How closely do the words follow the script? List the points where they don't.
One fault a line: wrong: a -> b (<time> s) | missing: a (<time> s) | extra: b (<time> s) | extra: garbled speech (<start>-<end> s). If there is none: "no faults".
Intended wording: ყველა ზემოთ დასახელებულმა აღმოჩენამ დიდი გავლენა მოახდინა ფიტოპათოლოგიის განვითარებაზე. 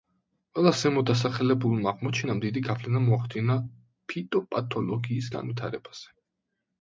no faults